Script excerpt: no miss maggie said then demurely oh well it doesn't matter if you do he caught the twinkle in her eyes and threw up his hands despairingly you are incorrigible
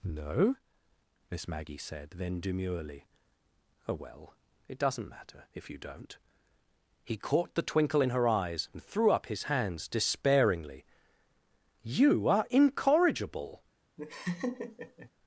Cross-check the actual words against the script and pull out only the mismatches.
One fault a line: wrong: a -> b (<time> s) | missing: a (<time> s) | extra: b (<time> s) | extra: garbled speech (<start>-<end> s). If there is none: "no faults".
wrong: do -> don't (5.8 s)